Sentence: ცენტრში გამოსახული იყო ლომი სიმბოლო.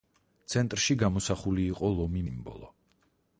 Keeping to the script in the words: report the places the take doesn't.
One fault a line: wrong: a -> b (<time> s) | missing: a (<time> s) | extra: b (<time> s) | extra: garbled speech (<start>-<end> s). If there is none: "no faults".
no faults